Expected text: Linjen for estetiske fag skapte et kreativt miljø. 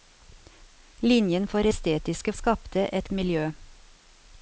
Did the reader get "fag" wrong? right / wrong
wrong